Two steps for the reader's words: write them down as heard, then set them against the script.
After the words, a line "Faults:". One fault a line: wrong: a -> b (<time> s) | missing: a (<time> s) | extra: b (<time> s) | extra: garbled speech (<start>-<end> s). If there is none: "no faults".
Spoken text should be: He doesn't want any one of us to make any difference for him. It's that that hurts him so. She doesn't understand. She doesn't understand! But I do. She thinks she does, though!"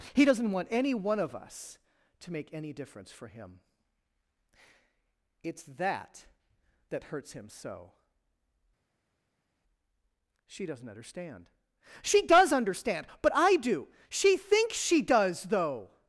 He doesn't want any one of us to make any difference for him. It's that that hurts him so. She doesn't understand. She does understand! But I do. She thinks she does, though!"
Faults:
wrong: doesn't -> does (12.3 s)